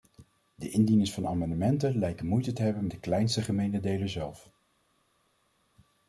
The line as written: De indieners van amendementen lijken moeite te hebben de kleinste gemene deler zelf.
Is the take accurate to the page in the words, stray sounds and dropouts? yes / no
yes